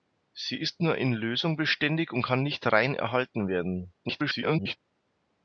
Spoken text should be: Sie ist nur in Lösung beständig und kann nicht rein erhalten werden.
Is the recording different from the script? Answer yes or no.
yes